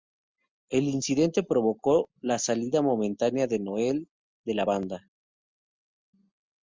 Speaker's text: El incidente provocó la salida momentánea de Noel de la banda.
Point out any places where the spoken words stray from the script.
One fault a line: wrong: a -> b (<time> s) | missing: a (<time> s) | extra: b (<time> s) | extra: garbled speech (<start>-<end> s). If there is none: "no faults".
no faults